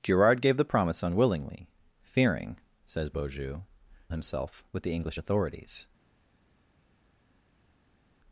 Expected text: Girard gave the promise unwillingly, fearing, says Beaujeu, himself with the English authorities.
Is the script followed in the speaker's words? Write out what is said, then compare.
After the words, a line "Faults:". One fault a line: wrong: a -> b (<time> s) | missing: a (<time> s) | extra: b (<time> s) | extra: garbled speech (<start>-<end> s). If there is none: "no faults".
Girard gave the promise unwillingly, fearing, says Beaujeu, himself with the English authorities.
Faults:
no faults